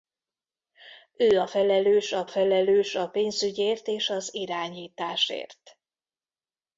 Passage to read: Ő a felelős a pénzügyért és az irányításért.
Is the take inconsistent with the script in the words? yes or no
yes